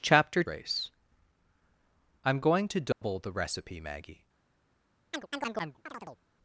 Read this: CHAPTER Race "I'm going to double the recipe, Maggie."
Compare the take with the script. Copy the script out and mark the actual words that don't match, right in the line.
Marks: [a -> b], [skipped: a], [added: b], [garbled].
CHAPTER Race "I'm going to double the recipe, Maggie."